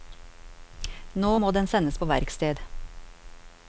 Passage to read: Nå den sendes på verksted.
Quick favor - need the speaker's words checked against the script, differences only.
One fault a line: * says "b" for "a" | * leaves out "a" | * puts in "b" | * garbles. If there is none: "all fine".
* puts in "må"